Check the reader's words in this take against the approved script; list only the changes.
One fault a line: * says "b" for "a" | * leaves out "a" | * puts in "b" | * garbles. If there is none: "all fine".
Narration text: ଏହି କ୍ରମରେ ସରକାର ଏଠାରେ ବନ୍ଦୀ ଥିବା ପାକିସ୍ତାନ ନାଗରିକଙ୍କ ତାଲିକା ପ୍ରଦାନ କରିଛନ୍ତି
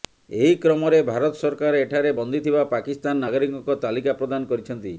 * puts in "ଭାରତ"